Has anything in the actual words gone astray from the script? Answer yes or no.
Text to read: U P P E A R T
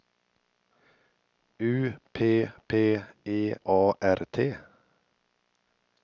no